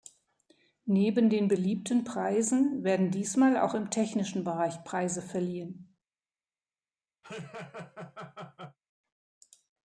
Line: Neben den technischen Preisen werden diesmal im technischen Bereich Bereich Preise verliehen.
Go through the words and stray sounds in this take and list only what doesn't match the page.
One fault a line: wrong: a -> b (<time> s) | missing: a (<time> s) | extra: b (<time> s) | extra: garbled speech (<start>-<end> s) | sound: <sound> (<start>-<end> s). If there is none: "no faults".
wrong: technischen -> beliebten (1.5 s)
extra: auch (3.5 s)
missing: Bereich (4.8 s)
sound: laugh (7.2-8.8 s)